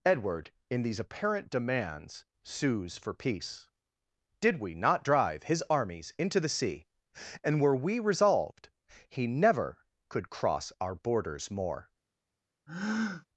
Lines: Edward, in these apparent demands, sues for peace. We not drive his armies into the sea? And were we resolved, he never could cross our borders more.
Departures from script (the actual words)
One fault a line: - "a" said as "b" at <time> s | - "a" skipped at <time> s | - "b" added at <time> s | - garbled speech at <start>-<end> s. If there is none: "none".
- "Did" added at 4.4 s